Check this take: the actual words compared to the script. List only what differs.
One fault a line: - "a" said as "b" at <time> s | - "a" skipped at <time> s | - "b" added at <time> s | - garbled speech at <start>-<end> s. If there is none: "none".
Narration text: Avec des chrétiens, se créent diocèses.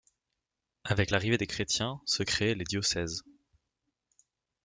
- "l'arrivée" added at 1.1 s
- "les" added at 2.5 s